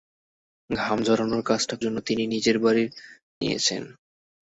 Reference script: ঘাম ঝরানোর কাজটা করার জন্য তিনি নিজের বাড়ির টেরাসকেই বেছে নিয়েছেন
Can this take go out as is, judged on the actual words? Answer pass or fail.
fail